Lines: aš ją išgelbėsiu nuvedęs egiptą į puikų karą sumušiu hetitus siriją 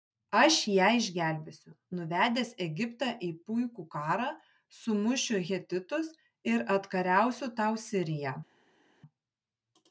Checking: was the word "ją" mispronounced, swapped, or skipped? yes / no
no